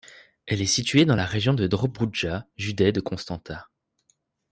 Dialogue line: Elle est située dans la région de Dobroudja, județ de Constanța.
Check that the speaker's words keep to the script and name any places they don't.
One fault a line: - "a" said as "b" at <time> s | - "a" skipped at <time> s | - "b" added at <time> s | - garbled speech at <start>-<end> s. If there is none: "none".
none